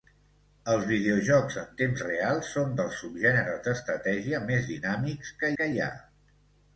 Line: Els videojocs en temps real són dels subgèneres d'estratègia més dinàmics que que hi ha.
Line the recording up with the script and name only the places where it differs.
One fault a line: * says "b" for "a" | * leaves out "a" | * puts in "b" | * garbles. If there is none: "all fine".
all fine